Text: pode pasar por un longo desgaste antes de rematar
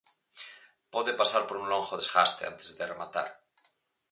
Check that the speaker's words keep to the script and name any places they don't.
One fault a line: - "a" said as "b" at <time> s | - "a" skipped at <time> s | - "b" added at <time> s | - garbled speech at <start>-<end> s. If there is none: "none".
none